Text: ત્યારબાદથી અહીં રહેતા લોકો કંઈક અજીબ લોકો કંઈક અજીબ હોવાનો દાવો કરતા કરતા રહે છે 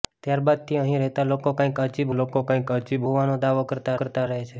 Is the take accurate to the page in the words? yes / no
yes